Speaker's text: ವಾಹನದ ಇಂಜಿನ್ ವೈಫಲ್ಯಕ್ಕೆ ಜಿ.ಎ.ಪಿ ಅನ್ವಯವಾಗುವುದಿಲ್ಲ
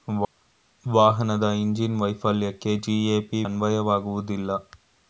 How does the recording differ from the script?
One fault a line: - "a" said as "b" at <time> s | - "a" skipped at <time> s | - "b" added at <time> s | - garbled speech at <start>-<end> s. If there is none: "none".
none